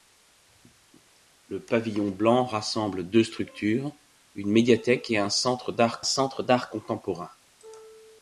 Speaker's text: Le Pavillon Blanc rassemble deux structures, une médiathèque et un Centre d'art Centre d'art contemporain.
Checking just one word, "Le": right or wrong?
right